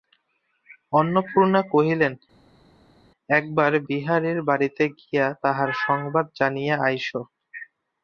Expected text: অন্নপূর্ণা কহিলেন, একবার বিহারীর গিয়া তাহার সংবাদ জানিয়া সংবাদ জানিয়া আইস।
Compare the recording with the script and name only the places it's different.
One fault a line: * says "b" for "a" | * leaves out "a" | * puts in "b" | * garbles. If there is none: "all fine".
* puts in "বাড়িতে"
* leaves out "সংবাদ জানিয়া"